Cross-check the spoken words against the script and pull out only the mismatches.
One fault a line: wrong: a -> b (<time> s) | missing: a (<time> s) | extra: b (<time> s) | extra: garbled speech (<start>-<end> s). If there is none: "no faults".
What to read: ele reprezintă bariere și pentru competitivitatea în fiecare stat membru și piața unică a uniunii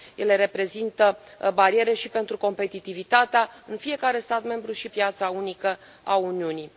no faults